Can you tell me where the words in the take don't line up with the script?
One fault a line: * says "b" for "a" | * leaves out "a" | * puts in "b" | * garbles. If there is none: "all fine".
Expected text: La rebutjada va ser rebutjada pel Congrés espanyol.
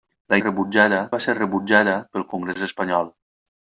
all fine